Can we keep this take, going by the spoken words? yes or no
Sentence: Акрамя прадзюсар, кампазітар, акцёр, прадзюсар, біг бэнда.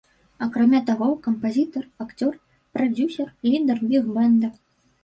no